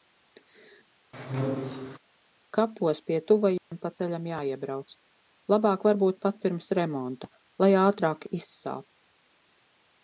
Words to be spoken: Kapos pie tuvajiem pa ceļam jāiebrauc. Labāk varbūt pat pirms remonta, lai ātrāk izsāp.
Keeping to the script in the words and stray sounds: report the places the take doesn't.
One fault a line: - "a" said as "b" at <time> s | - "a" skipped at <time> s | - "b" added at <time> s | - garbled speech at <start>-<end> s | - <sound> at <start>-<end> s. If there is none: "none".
- squeak at 1.1-2.0 s
- dropout at 3.6-3.7 s